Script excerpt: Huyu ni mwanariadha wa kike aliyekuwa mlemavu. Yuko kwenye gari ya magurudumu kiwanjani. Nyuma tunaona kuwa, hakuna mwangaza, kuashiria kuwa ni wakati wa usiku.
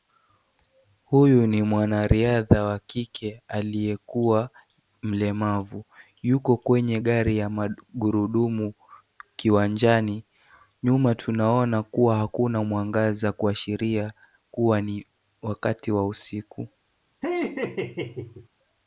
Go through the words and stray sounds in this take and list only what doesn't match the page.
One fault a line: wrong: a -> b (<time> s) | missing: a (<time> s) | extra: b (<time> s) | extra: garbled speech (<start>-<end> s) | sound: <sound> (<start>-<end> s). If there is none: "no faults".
sound: laugh (17.2-18.5 s)